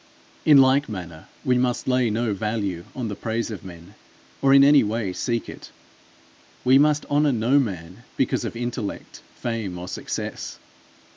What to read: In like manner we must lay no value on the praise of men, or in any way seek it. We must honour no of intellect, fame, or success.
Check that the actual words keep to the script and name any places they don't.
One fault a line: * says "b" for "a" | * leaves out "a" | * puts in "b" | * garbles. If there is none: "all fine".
* puts in "man because"